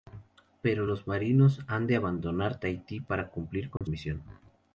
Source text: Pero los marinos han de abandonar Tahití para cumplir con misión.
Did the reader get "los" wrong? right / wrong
right